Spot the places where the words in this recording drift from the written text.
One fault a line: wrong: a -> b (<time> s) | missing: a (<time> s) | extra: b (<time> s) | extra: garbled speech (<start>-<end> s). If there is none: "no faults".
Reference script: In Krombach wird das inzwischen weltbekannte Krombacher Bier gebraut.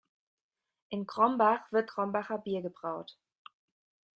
missing: das inzwischen weltbekannte (1.9 s)